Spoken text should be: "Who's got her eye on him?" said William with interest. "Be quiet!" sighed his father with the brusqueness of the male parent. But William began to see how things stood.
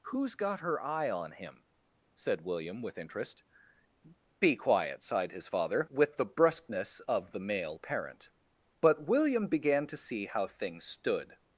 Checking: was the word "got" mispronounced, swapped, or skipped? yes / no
no